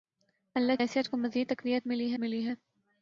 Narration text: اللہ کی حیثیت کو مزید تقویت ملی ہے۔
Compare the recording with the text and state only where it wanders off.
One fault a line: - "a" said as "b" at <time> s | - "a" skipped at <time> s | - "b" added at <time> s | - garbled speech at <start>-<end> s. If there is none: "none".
- "کی" skipped at 0.8 s
- "ملی" added at 2.2 s